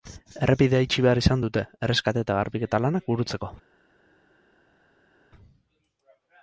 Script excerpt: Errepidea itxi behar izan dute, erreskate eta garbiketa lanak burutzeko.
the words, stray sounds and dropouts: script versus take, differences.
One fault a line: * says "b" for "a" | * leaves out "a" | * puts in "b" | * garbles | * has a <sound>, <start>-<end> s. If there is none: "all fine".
all fine